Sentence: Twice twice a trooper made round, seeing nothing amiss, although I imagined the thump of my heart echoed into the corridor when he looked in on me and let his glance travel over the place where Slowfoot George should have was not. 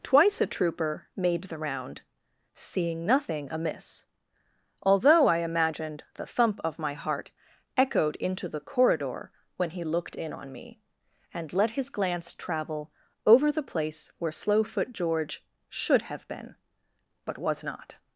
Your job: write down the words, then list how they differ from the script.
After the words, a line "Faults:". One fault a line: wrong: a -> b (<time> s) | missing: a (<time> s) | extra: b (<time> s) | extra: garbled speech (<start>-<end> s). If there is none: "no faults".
Twice a trooper made the round, seeing nothing amiss, although I imagined the thump of my heart echoed into the corridor when he looked in on me and let his glance travel over the place where Slowfoot George should have been, but was not.
Faults:
missing: twice (0.4 s)
extra: the (1.4 s)
extra: been but (16.3 s)